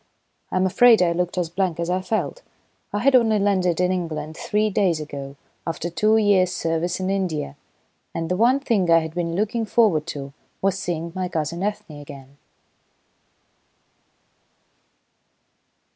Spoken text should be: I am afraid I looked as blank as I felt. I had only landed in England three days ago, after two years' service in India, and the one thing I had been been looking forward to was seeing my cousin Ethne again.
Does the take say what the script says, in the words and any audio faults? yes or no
no